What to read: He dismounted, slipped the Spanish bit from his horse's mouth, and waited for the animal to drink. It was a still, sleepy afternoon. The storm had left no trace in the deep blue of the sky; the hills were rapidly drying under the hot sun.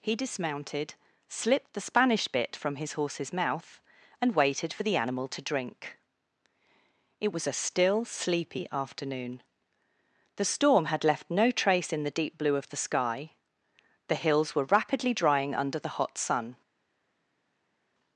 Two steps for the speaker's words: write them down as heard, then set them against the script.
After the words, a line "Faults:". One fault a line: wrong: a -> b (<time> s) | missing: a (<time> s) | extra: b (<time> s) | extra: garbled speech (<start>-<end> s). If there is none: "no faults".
He dismounted, slipped the Spanish bit from his horse's mouth, and waited for the animal to drink. It was a still, sleepy afternoon. The storm had left no trace in the deep blue of the sky; the hills were rapidly drying under the hot sun.
Faults:
no faults